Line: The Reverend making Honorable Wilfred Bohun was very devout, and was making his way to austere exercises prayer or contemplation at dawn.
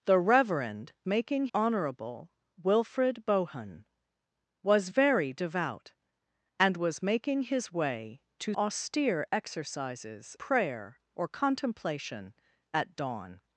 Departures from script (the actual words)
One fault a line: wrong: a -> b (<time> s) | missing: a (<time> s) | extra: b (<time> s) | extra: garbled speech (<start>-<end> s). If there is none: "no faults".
no faults